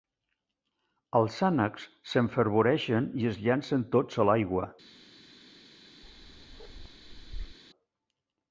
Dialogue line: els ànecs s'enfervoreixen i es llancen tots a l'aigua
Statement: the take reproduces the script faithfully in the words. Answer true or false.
true